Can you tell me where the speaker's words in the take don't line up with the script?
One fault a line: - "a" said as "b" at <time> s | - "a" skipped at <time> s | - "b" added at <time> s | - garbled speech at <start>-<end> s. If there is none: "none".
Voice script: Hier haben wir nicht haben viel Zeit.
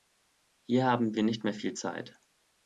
- "haben" said as "mehr" at 1.4 s